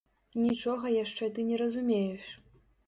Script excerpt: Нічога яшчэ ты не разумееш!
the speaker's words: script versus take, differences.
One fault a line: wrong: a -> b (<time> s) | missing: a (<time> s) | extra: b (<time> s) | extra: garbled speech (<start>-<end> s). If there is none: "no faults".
no faults